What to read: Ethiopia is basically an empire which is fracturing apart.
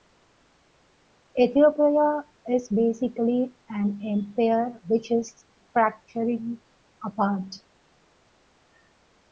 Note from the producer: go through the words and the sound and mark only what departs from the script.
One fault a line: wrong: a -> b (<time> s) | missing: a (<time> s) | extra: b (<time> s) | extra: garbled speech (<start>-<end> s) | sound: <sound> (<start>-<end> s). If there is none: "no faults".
no faults